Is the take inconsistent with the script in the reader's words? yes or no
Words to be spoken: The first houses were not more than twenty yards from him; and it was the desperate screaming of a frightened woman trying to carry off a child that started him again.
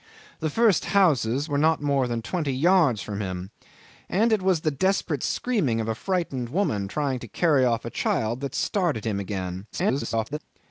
yes